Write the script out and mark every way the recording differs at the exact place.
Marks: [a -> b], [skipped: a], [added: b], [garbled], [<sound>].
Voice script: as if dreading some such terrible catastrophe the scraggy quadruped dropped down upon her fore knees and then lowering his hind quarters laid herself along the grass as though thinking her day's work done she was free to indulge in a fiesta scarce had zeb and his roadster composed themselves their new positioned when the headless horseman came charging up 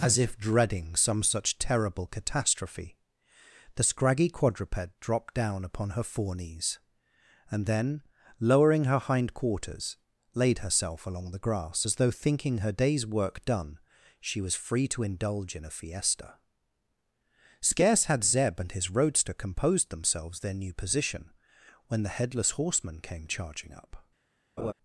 as if dreading some such terrible catastrophe the scraggy quadruped dropped down upon her fore knees and then lowering [his -> her] hind quarters laid herself along the grass as though thinking her day's work done she was free to indulge in a fiesta scarce had zeb and his roadster composed themselves their new [positioned -> position] when the headless horseman came charging up [laugh]